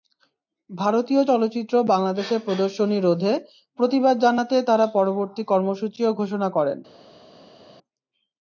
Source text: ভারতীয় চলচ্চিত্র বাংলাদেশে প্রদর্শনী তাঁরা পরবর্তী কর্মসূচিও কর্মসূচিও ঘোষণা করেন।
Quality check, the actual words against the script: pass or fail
fail